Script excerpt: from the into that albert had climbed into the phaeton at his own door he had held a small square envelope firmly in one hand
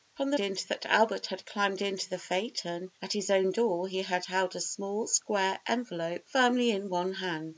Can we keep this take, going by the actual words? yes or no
yes